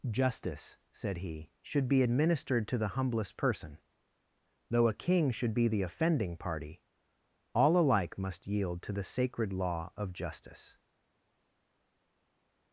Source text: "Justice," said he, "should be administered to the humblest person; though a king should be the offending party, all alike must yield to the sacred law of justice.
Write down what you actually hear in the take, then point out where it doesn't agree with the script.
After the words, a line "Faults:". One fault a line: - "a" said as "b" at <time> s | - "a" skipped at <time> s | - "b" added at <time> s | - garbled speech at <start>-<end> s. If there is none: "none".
"Justice," said he, "should be administered to the humblest person; though a king should be the offending party, all alike must yield to the sacred law of justice.
Faults:
none